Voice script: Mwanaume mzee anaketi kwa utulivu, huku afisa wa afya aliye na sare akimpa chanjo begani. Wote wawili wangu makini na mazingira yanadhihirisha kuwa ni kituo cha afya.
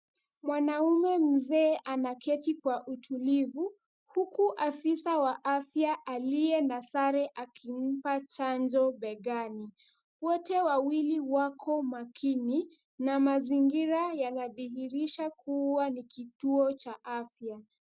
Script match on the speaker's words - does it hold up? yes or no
no